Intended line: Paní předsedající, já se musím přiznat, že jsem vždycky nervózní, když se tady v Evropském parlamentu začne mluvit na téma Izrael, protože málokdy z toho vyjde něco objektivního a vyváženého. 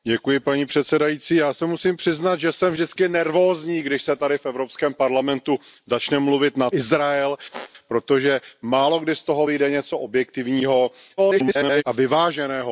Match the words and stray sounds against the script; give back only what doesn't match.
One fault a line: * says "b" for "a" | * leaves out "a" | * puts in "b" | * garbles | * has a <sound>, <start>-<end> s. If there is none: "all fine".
* leaves out "téma"
* has a squeak, 7.5-7.7 s
* garbles